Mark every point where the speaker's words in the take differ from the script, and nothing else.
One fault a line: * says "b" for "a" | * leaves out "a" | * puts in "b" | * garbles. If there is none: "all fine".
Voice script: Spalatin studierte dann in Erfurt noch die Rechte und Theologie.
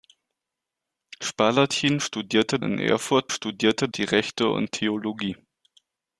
* leaves out "dann"
* says "studierte" for "noch"